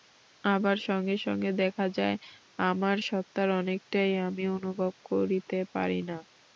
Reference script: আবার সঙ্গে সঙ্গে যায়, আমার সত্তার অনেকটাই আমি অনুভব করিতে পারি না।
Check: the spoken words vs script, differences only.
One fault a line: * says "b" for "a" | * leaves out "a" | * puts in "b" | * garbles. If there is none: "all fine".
* puts in "দেখা"